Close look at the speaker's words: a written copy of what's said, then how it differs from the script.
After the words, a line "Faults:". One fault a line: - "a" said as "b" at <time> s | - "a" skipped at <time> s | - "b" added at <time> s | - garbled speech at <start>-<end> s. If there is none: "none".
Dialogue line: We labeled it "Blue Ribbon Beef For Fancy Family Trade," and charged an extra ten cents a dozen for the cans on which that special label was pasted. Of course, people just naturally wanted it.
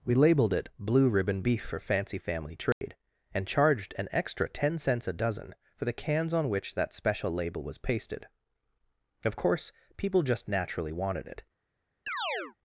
We labeled it "Blue Ribbon Beef For Fancy Family Trade," and charged an extra ten cents a dozen for the cans on which that special label was pasted. Of course, people just naturally wanted it.
Faults:
none